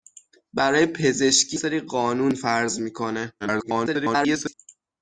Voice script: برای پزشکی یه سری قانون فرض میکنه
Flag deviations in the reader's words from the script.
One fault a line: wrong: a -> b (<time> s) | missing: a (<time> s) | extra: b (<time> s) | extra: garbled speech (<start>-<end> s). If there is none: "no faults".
missing: یه (1.6 s)
extra: garbled speech (3.4-4.5 s)